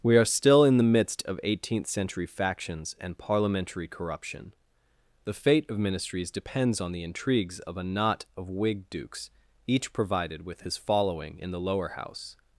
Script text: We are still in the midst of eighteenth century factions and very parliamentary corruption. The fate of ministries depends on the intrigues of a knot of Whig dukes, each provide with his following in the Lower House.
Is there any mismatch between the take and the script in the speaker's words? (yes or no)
yes